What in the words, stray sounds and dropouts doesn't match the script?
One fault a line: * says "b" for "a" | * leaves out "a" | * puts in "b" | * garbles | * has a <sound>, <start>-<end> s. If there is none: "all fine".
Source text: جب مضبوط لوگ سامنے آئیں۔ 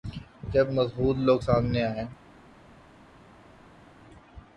all fine